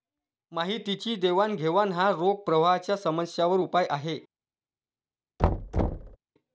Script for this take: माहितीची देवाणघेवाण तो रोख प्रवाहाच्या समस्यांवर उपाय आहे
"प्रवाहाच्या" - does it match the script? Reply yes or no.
yes